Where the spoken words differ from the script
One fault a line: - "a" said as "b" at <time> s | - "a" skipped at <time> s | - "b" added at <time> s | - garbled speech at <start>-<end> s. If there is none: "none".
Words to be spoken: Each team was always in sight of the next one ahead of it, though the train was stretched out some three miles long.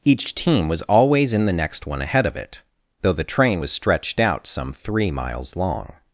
- "sight of" skipped at 1.4 s